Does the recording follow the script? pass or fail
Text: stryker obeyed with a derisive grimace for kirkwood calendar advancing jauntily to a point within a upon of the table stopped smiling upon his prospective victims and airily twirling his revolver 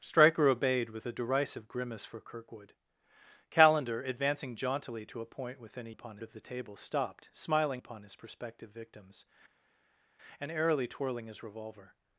pass